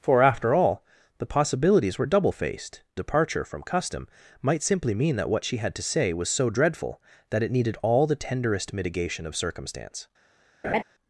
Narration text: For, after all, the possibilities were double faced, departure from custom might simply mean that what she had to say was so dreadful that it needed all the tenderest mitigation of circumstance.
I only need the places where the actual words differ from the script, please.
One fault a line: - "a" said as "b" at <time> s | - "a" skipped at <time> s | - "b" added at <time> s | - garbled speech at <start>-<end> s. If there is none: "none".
none